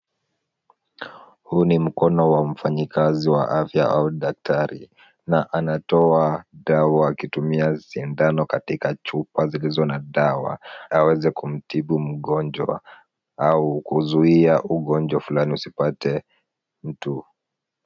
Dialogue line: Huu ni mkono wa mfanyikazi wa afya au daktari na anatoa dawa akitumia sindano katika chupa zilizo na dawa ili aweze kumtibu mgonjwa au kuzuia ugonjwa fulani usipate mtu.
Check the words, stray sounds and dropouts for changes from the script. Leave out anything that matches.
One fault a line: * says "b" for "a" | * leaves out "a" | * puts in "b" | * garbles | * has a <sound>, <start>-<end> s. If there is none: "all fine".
* leaves out "ili"